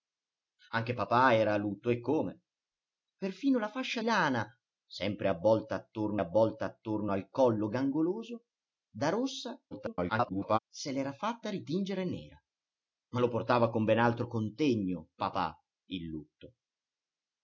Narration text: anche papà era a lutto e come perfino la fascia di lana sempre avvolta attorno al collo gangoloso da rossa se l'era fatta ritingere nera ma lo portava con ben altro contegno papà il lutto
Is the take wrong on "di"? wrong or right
wrong